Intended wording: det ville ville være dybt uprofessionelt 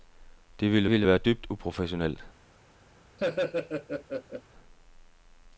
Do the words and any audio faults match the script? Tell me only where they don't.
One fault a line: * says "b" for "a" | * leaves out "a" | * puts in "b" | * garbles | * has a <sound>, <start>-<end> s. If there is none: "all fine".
* has a laugh, 3.2-4.4 s